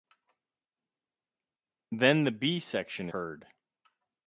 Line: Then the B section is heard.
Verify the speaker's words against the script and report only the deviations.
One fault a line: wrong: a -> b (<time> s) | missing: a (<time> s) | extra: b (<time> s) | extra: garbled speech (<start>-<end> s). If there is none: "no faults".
missing: is (3.1 s)